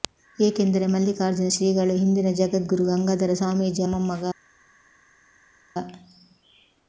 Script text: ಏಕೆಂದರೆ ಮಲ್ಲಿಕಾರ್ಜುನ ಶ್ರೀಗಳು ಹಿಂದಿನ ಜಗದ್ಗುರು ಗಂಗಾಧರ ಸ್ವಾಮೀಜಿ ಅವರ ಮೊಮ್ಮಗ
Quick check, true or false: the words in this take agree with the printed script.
false